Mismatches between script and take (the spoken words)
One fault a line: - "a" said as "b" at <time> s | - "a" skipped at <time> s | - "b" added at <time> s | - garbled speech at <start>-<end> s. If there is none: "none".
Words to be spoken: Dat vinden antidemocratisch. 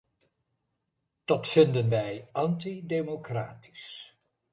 - "wij" added at 1.9 s